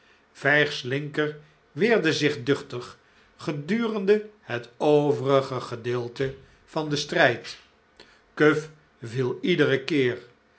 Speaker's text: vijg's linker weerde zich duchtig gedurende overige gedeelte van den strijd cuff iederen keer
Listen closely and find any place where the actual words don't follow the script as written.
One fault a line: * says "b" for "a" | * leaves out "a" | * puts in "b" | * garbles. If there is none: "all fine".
* puts in "het"
* puts in "viel"